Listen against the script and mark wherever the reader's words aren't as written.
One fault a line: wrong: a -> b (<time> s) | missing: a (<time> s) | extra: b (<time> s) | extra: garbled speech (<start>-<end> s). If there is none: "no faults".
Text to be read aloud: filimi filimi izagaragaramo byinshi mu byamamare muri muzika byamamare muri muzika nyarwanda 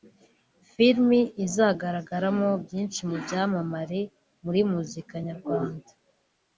missing: filimi (1.2 s)
missing: byamamare muri muzika (5.1 s)